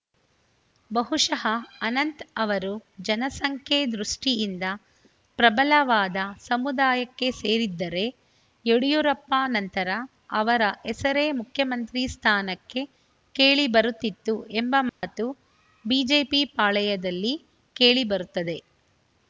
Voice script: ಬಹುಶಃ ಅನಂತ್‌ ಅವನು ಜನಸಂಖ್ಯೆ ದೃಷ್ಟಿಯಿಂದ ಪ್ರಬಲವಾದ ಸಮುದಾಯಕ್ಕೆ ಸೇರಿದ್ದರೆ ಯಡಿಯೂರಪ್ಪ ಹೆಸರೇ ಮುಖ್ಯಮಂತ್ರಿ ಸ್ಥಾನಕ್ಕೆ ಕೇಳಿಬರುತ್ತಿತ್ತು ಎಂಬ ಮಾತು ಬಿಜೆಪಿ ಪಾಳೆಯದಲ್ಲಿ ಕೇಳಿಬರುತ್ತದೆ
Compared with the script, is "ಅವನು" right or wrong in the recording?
wrong